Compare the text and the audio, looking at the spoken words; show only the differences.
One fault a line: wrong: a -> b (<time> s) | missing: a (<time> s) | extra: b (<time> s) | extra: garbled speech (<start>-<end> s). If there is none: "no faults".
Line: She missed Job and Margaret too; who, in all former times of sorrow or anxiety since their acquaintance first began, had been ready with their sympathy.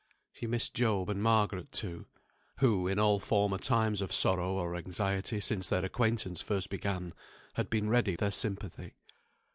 missing: with (8.2 s)